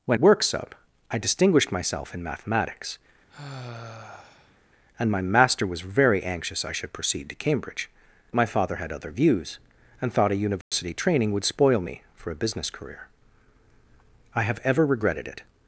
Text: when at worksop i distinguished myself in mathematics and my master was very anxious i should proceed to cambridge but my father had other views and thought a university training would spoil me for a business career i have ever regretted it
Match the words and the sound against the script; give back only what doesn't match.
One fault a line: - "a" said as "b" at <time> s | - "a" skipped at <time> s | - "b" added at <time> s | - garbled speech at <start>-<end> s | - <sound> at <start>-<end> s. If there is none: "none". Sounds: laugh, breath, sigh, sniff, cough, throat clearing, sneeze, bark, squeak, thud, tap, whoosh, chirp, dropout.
- "at" skipped at 0.2 s
- sigh at 3.3-4.6 s
- "but" skipped at 7.9 s
- dropout at 10.6-10.7 s